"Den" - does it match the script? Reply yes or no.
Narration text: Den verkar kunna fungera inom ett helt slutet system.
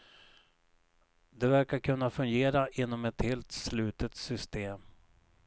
no